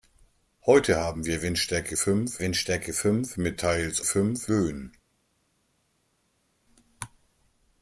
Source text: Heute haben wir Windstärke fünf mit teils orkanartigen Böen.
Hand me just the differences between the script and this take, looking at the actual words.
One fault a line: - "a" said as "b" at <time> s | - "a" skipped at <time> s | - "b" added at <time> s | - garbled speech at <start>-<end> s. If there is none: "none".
- "Windstärke fünf" added at 2.4 s
- "orkanartigen" said as "fünf" at 4.0 s